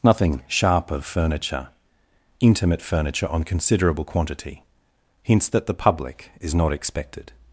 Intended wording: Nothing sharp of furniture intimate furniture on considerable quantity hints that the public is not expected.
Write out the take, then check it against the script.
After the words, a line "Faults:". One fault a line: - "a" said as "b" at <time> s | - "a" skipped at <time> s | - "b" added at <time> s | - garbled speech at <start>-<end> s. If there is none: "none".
Nothing sharp of furniture intimate furniture on considerable quantity hints that the public is not expected.
Faults:
none